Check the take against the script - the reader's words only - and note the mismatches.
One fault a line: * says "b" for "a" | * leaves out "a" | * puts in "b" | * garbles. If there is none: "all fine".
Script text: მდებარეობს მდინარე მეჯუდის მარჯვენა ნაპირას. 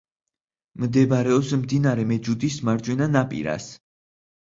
all fine